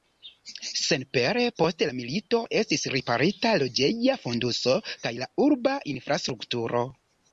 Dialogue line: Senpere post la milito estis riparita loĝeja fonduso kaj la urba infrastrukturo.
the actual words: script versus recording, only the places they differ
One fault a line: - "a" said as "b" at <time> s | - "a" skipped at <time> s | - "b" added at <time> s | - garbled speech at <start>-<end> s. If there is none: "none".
none